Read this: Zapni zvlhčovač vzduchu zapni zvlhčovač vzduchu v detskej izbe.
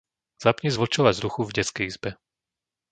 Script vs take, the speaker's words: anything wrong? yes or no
yes